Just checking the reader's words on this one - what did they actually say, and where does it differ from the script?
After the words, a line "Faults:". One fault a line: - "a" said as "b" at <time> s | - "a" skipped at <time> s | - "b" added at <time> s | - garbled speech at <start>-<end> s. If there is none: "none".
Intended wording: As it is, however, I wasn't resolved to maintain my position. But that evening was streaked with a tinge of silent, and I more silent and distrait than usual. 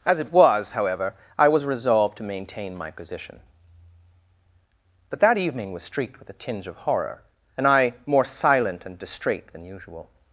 As it was, however, I was resolved to maintain my position. But that evening was streaked with a tinge of horror, and I more silent and distrait than usual.
Faults:
- "is" said as "was" at 0.3 s
- "wasn't" said as "was" at 1.5 s
- "silent" said as "horror" at 6.8 s